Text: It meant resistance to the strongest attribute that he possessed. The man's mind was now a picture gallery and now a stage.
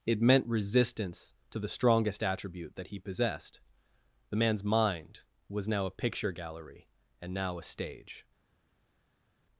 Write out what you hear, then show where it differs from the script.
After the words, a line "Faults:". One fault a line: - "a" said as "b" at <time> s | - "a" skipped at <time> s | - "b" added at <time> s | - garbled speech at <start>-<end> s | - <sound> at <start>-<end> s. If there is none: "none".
It meant resistance to the strongest attribute that he possessed. The man's mind was now a picture gallery and now a stage.
Faults:
none